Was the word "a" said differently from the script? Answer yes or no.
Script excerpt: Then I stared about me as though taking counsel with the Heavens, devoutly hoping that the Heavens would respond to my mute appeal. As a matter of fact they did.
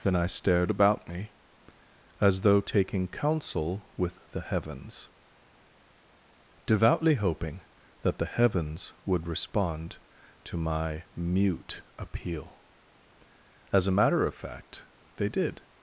no